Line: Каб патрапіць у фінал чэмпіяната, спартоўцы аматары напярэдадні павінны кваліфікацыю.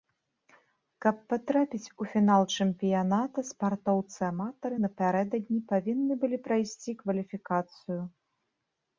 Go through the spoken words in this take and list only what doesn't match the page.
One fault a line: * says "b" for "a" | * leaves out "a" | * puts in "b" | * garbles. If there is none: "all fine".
* puts in "былі прайсці"